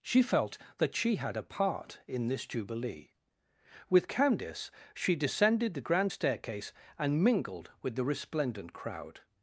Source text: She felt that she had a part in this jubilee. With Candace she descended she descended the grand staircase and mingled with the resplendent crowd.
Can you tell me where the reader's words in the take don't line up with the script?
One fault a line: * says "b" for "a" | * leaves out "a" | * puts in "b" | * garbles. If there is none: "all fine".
* leaves out "she descended"